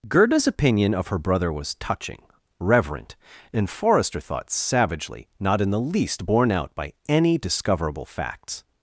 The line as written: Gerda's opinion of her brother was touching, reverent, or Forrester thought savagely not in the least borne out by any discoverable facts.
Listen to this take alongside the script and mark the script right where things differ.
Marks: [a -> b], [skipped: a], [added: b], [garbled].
Gerda's opinion of her brother was touching, reverent, [or -> and] Forrester thought savagely not in the least borne out by any discoverable facts.